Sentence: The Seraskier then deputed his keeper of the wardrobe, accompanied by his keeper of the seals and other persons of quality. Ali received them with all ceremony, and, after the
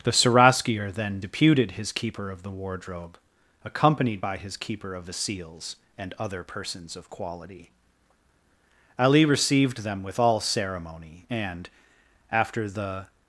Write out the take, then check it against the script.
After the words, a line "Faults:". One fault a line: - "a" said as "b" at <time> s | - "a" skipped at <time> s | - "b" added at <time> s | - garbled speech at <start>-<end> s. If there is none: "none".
The Seraskier then deputed his keeper of the wardrobe, accompanied by his keeper of the seals and other persons of quality. Ali received them with all ceremony, and, after the
Faults:
none